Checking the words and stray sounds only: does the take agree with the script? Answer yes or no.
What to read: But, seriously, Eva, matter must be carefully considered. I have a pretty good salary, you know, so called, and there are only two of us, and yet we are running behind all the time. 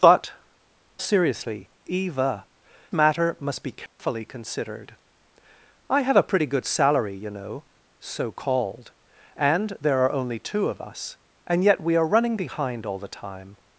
no